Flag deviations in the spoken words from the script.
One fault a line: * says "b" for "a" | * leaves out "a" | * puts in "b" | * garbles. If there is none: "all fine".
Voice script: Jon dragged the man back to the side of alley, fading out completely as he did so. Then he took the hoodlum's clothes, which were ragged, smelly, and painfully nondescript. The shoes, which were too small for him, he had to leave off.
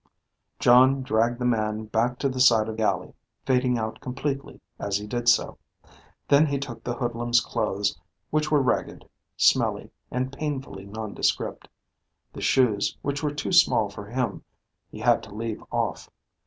all fine